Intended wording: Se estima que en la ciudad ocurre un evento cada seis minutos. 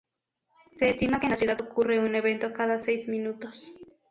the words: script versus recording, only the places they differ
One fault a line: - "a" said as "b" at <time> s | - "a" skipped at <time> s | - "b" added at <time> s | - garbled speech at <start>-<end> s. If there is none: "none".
none